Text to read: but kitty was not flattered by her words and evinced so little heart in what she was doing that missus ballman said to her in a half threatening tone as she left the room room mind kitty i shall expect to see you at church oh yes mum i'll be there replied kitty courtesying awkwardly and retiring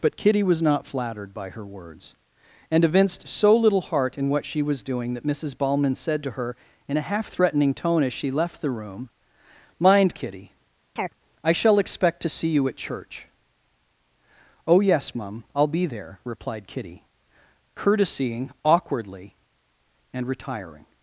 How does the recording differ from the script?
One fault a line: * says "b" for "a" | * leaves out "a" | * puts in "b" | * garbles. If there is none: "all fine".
* leaves out "room"